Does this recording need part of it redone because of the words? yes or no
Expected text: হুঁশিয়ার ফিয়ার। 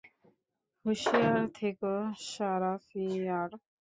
yes